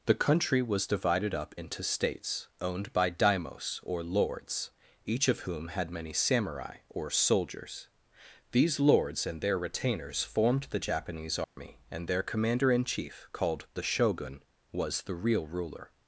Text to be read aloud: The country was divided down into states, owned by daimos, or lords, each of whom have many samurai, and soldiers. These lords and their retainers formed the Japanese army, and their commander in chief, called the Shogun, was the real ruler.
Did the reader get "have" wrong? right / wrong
wrong